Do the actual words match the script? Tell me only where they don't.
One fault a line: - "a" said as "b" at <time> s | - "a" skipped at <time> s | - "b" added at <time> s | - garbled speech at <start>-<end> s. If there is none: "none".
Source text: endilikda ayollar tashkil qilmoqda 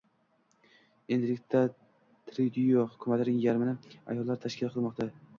- "tryudo hukumatining yarmini" added at 2.3 s